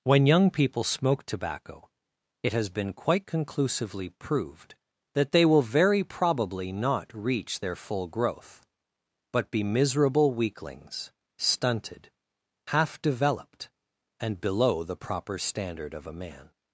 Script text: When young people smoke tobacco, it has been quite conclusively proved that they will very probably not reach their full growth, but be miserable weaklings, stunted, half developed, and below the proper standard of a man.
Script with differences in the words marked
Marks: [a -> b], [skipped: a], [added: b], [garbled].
When young people smoke tobacco, it has been quite conclusively proved that they will very probably not reach their full growth, but be miserable weaklings, stunted, half developed, and below the proper standard of a man.